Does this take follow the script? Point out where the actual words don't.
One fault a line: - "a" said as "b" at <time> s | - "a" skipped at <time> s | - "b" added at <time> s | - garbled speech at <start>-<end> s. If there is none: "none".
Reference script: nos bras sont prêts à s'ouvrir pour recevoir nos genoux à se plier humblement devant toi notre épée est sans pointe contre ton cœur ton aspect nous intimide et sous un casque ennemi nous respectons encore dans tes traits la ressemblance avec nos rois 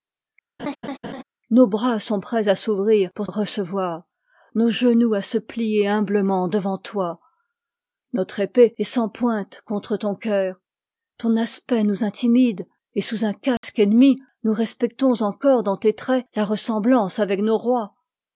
none